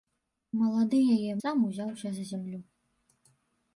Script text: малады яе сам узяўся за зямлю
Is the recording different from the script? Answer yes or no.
no